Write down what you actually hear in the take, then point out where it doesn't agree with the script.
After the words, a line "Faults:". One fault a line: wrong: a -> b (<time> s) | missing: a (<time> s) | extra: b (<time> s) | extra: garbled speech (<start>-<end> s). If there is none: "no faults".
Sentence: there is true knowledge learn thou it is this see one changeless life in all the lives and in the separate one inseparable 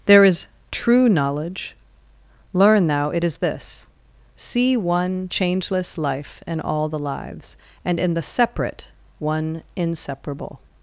there is true knowledge learn thou it is this see one changeless life in all the lives and in the separate one inseparable
Faults:
no faults